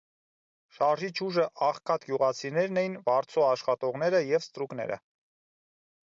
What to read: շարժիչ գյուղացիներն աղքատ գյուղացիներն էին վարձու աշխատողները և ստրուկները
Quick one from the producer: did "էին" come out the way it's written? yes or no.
yes